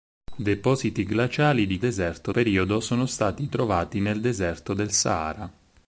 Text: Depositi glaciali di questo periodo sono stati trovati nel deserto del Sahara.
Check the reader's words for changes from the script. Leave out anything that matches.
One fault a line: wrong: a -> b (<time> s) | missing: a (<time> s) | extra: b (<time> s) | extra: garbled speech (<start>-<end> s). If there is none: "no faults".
wrong: questo -> deserto (1.8 s)